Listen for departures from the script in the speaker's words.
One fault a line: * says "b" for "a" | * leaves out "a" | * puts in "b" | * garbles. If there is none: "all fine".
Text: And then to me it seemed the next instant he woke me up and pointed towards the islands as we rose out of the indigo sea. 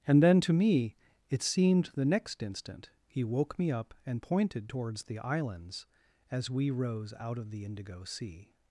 all fine